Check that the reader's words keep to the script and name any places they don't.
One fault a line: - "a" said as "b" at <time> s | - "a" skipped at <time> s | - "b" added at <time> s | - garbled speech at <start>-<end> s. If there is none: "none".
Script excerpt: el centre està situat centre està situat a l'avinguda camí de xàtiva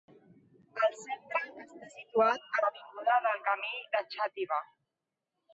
- "centre està situat" skipped at 2.5 s
- "del" added at 3.3 s